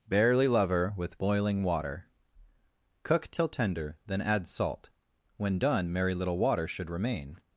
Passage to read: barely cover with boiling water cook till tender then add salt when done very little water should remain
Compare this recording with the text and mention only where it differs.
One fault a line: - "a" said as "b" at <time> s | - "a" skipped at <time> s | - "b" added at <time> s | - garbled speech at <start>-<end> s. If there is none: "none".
- "cover" said as "lover" at 0.5 s
- "very" said as "merry" at 5.9 s